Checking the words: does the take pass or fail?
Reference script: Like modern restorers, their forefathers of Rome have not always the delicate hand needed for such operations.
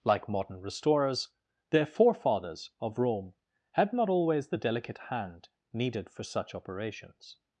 fail